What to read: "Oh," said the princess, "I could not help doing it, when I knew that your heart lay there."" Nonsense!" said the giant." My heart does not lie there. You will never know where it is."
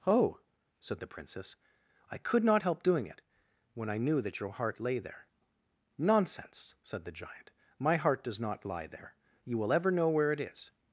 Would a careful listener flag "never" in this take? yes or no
yes